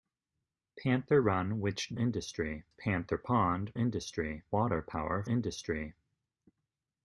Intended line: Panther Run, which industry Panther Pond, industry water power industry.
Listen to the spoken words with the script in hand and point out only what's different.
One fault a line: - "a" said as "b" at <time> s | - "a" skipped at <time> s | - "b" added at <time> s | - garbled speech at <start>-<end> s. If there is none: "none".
none